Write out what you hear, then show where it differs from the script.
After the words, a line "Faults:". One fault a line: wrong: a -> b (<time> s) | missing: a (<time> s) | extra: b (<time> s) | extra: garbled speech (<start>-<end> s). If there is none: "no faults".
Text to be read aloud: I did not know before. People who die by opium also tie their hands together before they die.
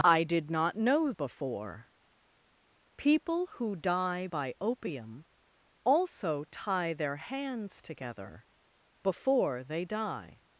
I did not know before. People who die by opium also tie their hands together before they die.
Faults:
no faults